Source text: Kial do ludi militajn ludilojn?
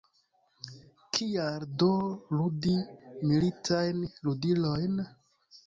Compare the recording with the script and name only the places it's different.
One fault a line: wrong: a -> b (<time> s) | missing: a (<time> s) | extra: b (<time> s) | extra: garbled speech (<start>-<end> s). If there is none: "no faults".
no faults